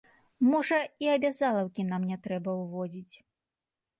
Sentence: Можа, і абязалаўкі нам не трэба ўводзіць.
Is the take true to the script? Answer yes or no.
yes